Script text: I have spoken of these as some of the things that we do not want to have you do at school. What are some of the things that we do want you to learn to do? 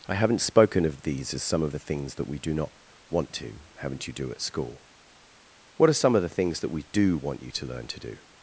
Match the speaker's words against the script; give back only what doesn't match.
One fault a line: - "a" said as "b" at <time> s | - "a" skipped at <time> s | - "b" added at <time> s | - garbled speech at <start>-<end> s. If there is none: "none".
- "have" said as "haven't" at 0.1 s
- "have" said as "haven't" at 3.8 s